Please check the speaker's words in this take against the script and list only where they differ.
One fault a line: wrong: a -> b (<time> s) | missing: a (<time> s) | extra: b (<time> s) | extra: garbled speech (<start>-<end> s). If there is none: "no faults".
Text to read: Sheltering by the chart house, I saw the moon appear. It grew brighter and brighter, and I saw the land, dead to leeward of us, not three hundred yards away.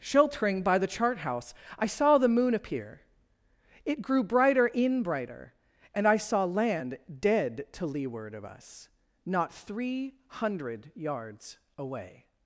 wrong: and -> in (4.7 s)
missing: the (6.4 s)